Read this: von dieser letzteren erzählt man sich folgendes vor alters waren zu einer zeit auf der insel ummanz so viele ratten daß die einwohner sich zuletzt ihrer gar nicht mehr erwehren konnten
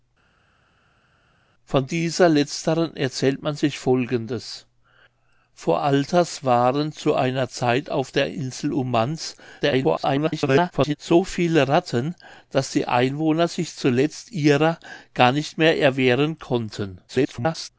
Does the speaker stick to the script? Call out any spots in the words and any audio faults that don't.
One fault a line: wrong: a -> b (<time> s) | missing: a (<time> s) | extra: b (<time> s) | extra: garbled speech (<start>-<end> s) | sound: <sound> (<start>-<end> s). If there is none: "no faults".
extra: garbled speech (9.6-11.0 s)
extra: garbled speech (17.1-17.7 s)